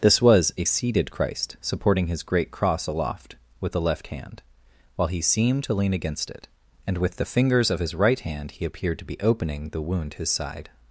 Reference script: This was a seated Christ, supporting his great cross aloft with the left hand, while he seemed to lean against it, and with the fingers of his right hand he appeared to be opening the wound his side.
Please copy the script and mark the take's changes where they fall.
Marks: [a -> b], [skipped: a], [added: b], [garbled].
This was a seated Christ, supporting his great cross aloft with the left hand, while he seemed to lean against it, and with the fingers of his right hand he appeared to be opening the wound his side.